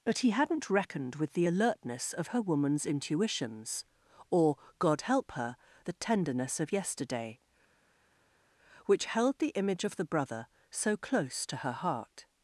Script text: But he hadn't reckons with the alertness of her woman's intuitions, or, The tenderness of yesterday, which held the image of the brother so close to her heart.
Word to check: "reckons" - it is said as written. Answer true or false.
false